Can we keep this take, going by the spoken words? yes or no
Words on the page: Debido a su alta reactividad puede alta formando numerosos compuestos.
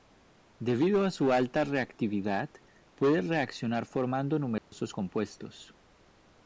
no